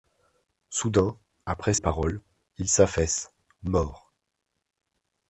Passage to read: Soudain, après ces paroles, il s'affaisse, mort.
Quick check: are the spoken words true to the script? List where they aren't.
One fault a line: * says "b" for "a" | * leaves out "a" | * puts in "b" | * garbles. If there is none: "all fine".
* leaves out "ces"